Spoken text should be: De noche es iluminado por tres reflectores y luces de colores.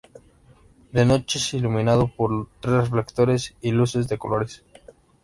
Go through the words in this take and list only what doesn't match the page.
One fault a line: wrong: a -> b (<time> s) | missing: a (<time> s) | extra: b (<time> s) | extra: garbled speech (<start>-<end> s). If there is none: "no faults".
no faults